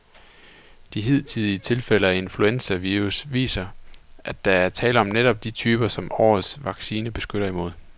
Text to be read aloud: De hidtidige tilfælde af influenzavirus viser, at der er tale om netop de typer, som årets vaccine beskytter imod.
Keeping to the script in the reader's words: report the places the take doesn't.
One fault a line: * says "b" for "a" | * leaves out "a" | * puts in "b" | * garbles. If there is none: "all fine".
all fine